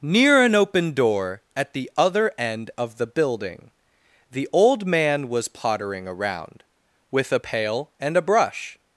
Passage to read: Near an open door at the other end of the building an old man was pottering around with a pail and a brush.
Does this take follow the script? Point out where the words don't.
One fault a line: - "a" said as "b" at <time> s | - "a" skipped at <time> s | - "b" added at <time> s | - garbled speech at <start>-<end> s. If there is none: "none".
- "an" said as "the" at 4.3 s